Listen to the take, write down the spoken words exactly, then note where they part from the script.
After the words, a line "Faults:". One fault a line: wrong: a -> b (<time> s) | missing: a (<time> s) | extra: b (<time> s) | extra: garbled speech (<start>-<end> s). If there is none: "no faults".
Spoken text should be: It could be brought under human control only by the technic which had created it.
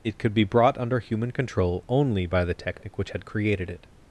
It could be brought under human control only by the technic which had created it.
Faults:
no faults